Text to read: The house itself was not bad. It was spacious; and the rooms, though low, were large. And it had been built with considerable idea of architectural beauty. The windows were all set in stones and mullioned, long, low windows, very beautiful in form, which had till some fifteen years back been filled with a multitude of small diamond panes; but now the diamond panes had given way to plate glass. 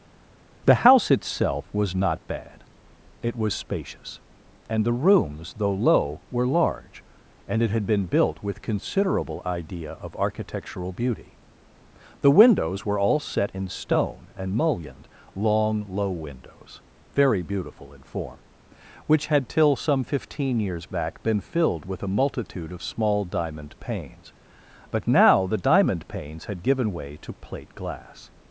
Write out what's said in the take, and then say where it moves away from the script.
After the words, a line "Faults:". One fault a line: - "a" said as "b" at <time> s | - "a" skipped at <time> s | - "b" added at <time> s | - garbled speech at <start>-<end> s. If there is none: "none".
The house itself was not bad. It was spacious; and the rooms, though low, were large. And it had been built with considerable idea of architectural beauty. The windows were all set in stone and mullioned, long, low windows, very beautiful in form, which had till some fifteen years back been filled with a multitude of small diamond panes; but now the diamond panes had given way to plate glass.
Faults:
- "stones" said as "stone" at 13.7 s